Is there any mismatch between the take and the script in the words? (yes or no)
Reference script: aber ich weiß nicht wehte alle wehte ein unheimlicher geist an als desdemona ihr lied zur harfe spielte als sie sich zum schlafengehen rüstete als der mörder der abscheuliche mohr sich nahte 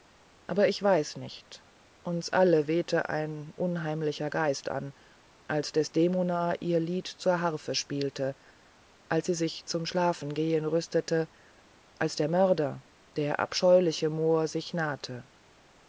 yes